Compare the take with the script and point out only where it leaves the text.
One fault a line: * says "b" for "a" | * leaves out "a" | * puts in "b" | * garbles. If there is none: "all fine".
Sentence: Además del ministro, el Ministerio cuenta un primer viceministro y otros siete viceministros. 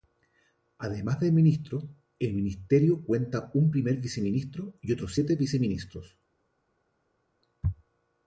all fine